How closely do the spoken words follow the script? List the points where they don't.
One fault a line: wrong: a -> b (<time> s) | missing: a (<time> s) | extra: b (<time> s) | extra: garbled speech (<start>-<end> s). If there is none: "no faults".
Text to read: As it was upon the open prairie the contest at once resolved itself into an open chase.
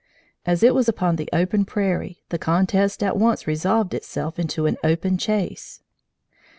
no faults